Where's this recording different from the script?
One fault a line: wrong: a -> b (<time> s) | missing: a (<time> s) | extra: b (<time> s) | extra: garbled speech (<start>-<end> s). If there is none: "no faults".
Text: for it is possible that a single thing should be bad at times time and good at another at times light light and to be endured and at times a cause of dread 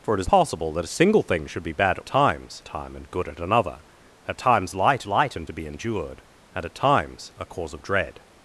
no faults